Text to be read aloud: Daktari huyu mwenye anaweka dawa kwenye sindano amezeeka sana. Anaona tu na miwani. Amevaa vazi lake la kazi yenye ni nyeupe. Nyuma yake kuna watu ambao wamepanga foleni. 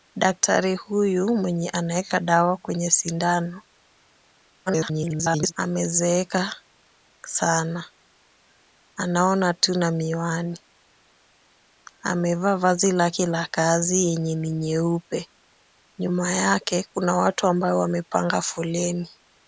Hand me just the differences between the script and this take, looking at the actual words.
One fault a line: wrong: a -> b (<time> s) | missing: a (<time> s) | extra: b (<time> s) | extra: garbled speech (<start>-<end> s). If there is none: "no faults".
extra: garbled speech (4.7-5.5 s)